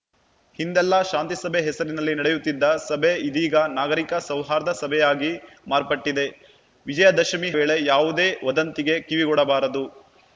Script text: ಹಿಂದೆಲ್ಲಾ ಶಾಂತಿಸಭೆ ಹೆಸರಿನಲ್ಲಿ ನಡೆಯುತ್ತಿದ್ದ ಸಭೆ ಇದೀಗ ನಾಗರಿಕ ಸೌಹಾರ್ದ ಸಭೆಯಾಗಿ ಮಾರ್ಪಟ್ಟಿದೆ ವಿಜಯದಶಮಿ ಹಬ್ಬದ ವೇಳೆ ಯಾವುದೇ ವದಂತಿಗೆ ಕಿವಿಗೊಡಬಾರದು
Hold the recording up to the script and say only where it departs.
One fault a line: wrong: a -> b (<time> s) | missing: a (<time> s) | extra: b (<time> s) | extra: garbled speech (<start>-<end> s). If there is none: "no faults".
missing: ಹಬ್ಬದ (7.5 s)